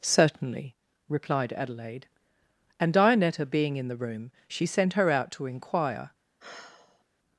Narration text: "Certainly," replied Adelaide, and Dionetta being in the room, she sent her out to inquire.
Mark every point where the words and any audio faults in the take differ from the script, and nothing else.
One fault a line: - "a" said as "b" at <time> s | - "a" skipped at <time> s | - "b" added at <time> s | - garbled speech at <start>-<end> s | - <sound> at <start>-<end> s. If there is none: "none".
- sigh at 6.4-7.0 s